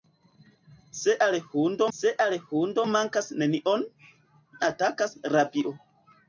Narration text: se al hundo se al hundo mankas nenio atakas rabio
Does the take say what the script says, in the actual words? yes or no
yes